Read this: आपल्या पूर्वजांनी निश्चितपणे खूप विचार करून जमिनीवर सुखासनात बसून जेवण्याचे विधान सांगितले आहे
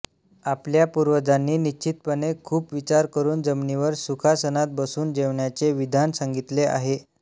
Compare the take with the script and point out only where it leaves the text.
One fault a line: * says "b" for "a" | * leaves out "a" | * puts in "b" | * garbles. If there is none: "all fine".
all fine